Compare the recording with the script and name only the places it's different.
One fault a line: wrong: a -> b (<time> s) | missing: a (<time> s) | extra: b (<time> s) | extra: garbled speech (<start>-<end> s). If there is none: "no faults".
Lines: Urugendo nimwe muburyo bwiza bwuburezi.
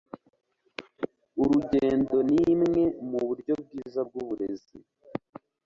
no faults